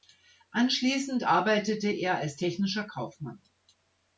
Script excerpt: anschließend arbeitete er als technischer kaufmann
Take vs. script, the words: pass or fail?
pass